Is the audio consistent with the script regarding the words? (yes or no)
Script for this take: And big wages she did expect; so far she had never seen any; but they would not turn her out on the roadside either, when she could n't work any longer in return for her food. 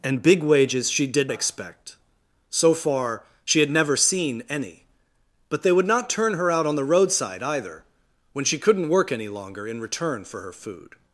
yes